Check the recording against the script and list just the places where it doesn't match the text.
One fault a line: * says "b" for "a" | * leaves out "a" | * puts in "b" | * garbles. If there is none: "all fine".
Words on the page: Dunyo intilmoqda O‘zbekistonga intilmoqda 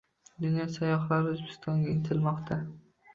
* says "sayyohlari" for "intilmoqda"